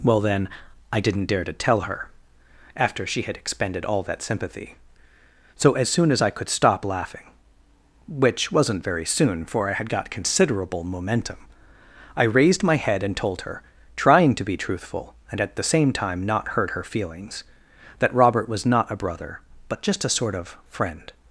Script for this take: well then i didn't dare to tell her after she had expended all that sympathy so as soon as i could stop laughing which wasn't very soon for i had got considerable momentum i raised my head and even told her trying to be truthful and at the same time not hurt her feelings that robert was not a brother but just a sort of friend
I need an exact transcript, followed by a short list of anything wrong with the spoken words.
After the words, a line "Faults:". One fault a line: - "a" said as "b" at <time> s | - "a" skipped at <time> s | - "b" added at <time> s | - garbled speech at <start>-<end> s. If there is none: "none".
well then i didn't dare to tell her after she had expended all that sympathy so as soon as i could stop laughing which wasn't very soon for i had got considerable momentum i raised my head and told her trying to be truthful and at the same time not hurt her feelings that robert was not a brother but just a sort of friend
Faults:
- "even" skipped at 13.2 s